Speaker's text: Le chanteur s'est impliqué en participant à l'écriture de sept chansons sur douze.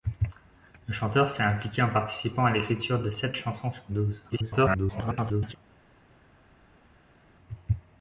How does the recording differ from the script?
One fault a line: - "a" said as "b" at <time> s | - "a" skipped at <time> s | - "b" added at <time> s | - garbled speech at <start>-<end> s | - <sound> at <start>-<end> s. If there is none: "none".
- garbled speech at 4.3-5.6 s